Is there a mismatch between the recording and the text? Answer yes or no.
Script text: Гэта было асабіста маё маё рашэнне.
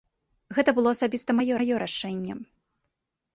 no